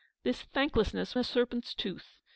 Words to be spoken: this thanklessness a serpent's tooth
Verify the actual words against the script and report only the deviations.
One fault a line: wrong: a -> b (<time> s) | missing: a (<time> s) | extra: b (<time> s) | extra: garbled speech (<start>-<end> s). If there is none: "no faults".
no faults